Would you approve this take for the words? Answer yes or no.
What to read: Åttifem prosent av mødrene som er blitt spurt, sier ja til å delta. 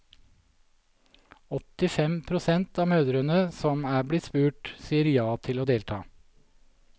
yes